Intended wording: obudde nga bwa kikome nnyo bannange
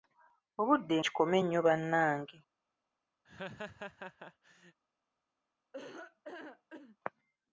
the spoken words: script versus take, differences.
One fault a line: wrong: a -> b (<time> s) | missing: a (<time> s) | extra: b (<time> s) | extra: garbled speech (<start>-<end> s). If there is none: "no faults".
missing: nga bwa (0.9 s)